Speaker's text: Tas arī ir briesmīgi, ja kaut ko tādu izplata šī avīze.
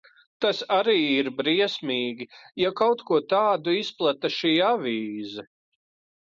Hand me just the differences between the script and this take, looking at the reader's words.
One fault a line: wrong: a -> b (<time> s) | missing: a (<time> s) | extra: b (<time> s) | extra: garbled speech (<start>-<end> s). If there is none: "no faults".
no faults